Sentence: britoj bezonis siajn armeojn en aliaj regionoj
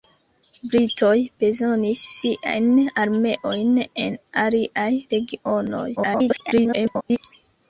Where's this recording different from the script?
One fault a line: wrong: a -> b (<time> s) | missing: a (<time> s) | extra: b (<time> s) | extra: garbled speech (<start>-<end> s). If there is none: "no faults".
extra: garbled speech (6.0-7.2 s)